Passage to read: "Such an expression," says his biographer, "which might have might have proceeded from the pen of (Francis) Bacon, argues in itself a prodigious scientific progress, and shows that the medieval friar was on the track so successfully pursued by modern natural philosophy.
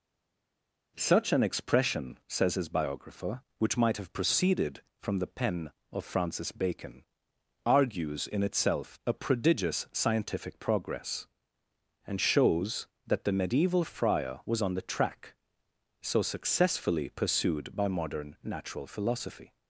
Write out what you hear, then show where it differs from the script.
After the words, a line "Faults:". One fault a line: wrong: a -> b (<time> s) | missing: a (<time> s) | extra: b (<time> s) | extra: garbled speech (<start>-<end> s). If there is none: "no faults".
"Such an expression," says his biographer, "which might have proceeded from the pen of (Francis) Bacon, argues in itself a prodigious scientific progress, and shows that the medieval friar was on the track so successfully pursued by modern natural philosophy.
Faults:
missing: might have (4.1 s)